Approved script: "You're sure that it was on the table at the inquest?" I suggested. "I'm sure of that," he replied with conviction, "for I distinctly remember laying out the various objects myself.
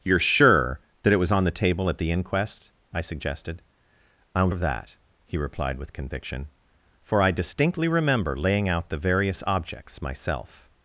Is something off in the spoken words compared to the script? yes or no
yes